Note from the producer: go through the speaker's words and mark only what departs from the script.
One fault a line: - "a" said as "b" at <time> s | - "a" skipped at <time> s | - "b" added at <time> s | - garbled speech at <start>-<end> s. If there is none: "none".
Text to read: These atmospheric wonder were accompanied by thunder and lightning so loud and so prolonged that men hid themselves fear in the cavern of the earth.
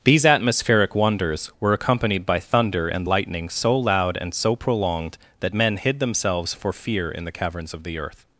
- "wonder" said as "wonders" at 1.0 s
- "for" added at 6.5 s
- "cavern" said as "caverns" at 7.3 s